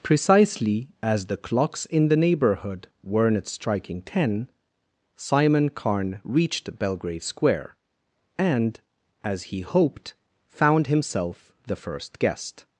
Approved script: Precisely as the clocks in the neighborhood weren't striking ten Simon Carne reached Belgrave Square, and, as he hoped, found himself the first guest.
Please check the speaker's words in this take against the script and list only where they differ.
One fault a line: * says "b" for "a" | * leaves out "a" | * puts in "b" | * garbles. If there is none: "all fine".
all fine